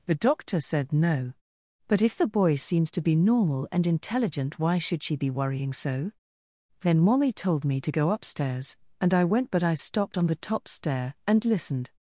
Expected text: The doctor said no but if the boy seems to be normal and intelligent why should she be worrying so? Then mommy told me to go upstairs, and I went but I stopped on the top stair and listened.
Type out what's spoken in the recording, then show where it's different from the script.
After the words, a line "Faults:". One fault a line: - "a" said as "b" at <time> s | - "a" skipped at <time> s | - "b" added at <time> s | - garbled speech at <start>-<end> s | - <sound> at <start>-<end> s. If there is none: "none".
The doctor said no but if the boy seems to be normal and intelligent why should she be worrying so? Then mommy told me to go upstairs, and I went but I stopped on the top stair and listened.
Faults:
none